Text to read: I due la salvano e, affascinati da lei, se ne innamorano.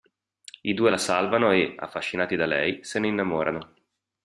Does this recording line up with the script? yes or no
yes